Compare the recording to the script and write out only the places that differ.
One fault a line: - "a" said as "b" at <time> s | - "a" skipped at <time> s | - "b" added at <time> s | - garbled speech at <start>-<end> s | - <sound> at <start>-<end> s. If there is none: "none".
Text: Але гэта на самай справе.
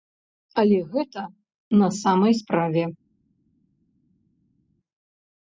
none